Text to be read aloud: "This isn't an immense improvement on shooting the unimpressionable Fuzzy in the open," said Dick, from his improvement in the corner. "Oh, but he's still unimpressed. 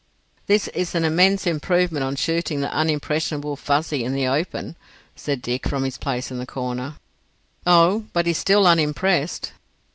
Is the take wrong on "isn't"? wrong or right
wrong